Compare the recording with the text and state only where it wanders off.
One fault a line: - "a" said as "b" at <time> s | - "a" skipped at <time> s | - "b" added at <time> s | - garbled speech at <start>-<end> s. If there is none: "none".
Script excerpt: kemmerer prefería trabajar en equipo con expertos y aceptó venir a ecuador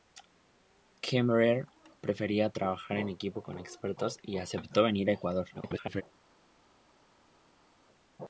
- garbled speech at 5.5-6.0 s